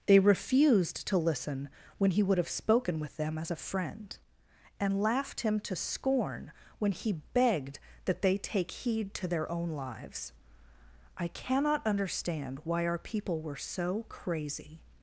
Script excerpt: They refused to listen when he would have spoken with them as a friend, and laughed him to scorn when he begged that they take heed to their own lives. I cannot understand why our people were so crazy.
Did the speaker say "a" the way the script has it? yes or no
yes